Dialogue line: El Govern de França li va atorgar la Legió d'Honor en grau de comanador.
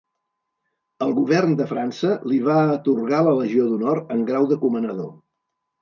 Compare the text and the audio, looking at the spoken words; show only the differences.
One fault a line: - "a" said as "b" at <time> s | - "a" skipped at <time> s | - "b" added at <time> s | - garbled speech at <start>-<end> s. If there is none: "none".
none